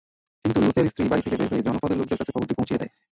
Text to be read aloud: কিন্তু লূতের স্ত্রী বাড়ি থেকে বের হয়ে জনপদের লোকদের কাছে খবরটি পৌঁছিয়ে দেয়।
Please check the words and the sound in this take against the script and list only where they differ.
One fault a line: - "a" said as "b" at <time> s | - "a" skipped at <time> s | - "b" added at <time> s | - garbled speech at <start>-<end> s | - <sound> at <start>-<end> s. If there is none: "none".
none